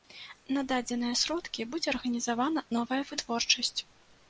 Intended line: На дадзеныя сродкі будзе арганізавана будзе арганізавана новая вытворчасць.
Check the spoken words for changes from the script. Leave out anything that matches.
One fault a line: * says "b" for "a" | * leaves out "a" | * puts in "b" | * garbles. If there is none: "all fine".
* leaves out "будзе арганізавана"